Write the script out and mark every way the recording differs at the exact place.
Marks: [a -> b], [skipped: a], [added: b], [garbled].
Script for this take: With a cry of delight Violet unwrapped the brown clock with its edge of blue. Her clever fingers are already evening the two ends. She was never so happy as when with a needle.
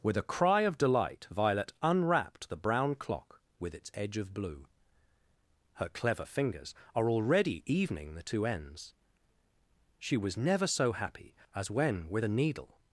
With a cry of delight Violet unwrapped the brown clock with its edge of blue. Her clever fingers are already evening the two ends. She was never so happy as when with a needle.